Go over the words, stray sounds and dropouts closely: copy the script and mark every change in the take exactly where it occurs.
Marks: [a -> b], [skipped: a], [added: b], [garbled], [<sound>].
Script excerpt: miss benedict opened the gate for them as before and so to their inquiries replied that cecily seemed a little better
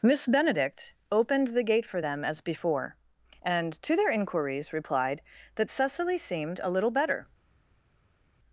miss benedict opened the gate for them as before and [skipped: so] to their inquiries replied that cecily seemed a little better